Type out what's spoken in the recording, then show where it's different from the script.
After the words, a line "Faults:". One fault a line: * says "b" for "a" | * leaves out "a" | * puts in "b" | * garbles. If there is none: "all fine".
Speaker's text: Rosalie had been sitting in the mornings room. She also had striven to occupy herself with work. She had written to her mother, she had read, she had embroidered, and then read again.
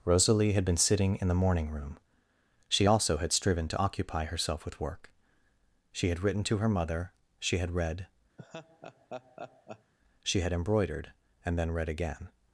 Rosalie had been sitting in the morning room. She also had striven to occupy herself with work. She had written to her mother, she had read, she had embroidered, and then read again.
Faults:
* says "morning" for "mornings"